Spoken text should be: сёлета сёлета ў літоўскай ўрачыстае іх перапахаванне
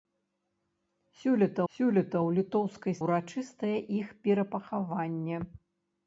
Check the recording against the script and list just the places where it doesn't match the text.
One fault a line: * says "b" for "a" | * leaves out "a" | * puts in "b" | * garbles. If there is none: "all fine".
all fine